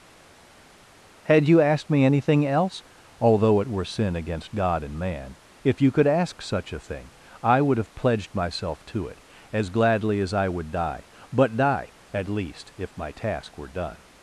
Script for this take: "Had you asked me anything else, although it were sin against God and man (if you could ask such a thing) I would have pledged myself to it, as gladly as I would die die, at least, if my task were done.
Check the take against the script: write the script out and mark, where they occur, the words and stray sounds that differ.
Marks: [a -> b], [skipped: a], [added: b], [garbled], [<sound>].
"Had you asked me anything else, although it were sin against God and man (if you could ask such a thing) I would have pledged myself to it, as gladly as I would die [added: but] die, at least, if my task were done.